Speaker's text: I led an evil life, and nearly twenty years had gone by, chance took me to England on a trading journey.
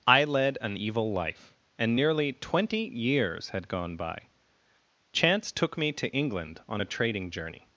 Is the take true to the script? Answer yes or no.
yes